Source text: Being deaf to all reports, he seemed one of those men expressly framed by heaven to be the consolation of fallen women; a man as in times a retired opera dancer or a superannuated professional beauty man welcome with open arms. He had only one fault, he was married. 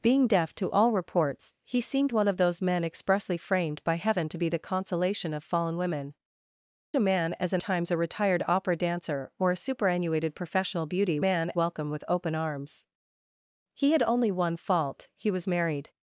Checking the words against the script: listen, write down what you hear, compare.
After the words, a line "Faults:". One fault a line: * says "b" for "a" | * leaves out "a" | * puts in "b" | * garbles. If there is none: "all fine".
Being deaf to all reports, he seemed one of those men expressly framed by heaven to be the consolation of fallen women; a man as in times a retired opera dancer or a superannuated professional beauty man welcome with open arms. He had only one fault, he was married.
Faults:
all fine